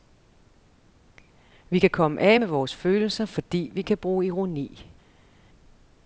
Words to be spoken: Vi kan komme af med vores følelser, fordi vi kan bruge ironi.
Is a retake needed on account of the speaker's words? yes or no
no